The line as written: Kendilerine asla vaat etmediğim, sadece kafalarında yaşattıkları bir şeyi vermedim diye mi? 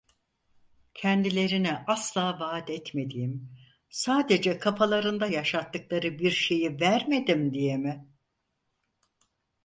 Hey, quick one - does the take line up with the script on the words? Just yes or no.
yes